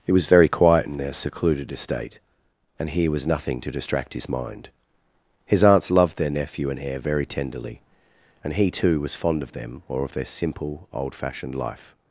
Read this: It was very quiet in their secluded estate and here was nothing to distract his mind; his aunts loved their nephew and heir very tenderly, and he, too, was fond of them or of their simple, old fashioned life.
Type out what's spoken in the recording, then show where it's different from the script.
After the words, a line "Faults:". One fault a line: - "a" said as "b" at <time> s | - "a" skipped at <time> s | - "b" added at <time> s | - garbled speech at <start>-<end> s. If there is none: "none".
It was very quiet in their secluded estate and here was nothing to distract his mind; his aunts loved their nephew and heir very tenderly, and he, too, was fond of them or of their simple, old fashioned life.
Faults:
none